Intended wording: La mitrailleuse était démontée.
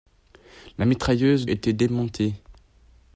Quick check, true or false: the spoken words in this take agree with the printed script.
true